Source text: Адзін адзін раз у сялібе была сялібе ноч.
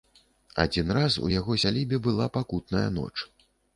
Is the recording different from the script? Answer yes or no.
yes